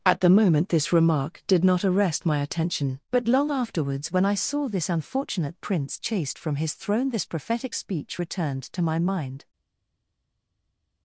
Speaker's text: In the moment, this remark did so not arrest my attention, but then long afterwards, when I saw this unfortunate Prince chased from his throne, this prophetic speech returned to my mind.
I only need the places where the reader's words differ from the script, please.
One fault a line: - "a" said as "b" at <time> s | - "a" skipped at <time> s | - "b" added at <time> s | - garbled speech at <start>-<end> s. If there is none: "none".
- "In" said as "At" at 0.0 s
- "so" skipped at 1.6 s
- "then" skipped at 3.3 s